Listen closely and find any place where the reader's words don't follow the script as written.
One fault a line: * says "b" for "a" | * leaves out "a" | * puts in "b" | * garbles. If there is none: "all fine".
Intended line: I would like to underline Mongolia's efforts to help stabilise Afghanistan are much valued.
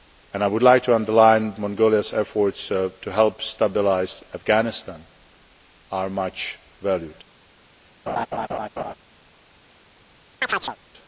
all fine